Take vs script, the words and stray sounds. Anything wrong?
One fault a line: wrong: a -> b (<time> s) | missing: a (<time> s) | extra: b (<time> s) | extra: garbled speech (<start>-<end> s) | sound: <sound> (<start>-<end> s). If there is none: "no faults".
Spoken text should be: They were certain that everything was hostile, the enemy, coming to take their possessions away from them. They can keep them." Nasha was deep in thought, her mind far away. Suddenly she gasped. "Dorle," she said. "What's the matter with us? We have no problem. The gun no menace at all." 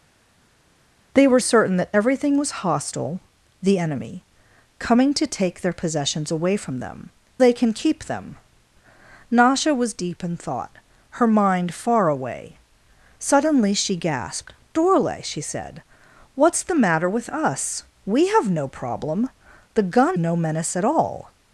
no faults